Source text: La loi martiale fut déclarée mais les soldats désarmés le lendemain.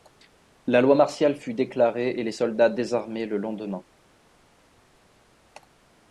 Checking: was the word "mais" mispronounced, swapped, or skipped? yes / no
yes